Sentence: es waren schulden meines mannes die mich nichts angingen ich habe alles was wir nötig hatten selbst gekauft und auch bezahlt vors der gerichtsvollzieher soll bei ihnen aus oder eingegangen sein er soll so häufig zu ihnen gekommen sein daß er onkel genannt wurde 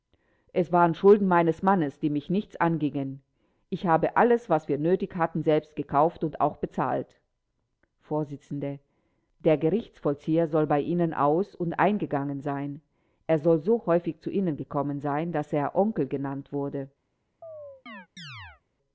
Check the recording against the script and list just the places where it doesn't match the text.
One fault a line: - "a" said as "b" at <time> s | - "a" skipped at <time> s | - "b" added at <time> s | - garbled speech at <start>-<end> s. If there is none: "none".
- "oder" said as "und" at 11.5 s